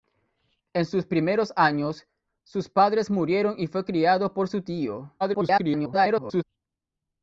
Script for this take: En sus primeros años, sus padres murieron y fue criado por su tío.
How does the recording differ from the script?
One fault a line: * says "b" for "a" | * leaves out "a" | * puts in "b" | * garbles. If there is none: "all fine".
* garbles